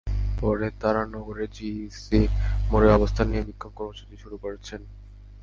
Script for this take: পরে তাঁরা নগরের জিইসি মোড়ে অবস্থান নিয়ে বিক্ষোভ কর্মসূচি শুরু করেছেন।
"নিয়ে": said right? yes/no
yes